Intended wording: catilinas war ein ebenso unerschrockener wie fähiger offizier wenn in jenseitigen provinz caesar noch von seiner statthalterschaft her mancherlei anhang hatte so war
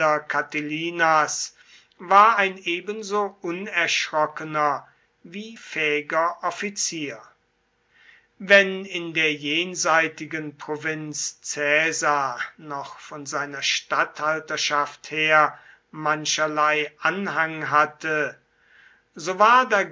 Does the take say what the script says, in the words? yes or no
no